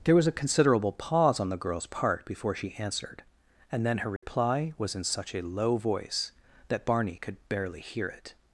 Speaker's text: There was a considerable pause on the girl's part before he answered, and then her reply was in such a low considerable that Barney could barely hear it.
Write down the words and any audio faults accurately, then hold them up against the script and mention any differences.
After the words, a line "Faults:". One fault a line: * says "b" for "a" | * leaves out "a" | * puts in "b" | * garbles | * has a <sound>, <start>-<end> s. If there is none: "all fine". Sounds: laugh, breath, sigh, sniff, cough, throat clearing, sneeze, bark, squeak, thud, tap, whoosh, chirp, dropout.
There was a considerable pause on the girl's part before she answered, and then her reply was in such a low voice that Barney could barely hear it.
Faults:
* says "she" for "he"
* has a dropout, 4.2-4.2 s
* says "voice" for "considerable"